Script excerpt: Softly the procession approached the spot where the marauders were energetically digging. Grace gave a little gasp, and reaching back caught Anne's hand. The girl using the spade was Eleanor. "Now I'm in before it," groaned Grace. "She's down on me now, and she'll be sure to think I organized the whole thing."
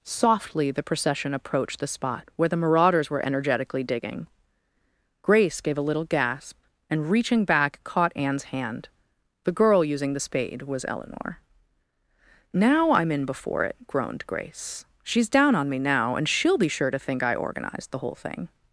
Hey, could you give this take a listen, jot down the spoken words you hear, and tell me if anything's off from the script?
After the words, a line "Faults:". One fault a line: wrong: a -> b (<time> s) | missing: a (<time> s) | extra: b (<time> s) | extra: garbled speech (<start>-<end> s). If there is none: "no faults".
Softly the procession approached the spot where the marauders were energetically digging. Grace gave a little gasp, and reaching back caught Anne's hand. The girl using the spade was Eleanor. "Now I'm in before it," groaned Grace. "She's down on me now, and she'll be sure to think I organized the whole thing."
Faults:
no faults